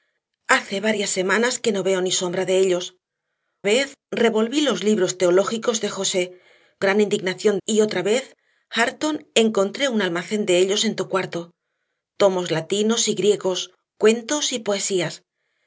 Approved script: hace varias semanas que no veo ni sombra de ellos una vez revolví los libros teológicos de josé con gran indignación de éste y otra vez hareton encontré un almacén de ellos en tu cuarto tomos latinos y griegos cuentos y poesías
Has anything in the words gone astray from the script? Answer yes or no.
yes